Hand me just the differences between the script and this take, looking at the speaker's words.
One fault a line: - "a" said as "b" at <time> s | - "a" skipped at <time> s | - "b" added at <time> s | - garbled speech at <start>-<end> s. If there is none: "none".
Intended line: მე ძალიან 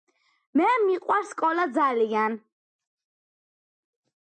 - "მიყვარს სკოლა" added at 0.8 s